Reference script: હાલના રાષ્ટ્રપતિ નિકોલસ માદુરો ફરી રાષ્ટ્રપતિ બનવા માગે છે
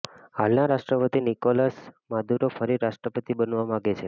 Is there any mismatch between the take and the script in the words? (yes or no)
no